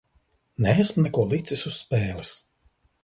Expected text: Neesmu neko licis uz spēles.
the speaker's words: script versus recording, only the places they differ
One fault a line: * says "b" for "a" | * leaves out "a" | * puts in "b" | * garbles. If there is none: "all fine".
all fine